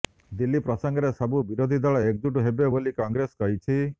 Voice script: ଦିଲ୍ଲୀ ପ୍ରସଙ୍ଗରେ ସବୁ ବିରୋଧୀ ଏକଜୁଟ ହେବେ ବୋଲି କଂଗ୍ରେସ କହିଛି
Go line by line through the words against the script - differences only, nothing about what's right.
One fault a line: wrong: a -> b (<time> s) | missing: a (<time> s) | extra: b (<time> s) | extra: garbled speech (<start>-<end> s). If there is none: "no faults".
extra: ଦଳ (1.8 s)